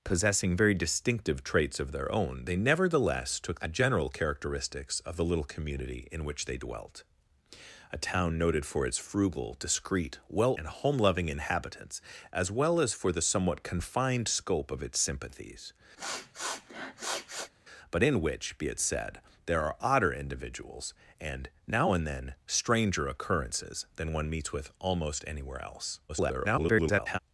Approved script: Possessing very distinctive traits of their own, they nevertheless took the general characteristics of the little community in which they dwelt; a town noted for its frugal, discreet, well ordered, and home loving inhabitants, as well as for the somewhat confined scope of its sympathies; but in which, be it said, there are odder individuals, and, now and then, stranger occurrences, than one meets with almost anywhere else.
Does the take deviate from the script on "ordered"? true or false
true